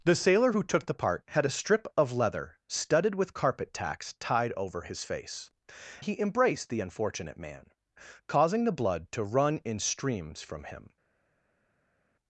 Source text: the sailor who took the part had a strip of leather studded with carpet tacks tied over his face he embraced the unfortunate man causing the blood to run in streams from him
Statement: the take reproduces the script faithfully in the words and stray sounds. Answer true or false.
true